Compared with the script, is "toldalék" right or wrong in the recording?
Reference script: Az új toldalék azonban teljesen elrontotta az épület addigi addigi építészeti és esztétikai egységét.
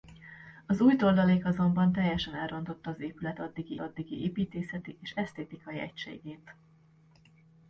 right